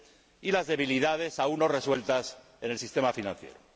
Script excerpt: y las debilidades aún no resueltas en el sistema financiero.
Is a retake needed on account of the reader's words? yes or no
no